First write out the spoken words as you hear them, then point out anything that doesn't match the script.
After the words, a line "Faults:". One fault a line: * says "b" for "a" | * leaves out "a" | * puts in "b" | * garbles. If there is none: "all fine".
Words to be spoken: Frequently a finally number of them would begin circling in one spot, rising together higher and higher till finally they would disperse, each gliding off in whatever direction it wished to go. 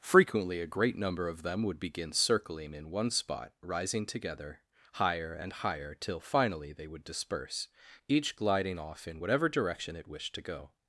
Frequently a great number of them would begin circling in one spot, rising together higher and higher till finally they would disperse, each gliding off in whatever direction it wished to go.
Faults:
* says "great" for "finally"